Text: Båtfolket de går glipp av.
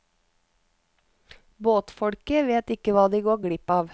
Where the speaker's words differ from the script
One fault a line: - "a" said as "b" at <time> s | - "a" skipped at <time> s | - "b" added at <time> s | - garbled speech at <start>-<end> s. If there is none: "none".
- "vet ikke hva" added at 2.5 s